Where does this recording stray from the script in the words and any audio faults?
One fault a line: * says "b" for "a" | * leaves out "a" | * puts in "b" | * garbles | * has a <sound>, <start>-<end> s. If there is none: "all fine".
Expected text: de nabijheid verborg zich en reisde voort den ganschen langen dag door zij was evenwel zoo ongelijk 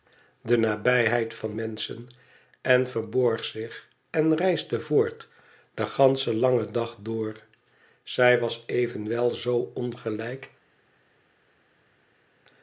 * puts in "van menschen en"